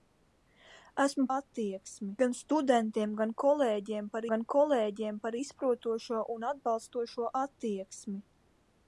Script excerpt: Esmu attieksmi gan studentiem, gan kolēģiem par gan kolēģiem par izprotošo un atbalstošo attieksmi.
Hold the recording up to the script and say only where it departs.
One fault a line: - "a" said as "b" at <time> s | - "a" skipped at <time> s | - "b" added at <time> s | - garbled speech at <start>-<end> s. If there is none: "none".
none